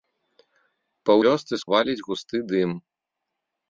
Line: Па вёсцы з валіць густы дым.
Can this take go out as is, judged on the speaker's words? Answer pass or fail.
pass